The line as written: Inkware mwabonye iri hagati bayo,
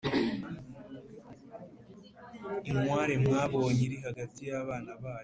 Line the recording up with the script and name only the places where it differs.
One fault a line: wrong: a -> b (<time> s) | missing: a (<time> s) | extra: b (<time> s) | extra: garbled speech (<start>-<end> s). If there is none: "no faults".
extra: y'abana (4.5 s)